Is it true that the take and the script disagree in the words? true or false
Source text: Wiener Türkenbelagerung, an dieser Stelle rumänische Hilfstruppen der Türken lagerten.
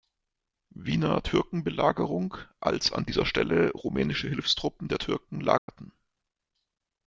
true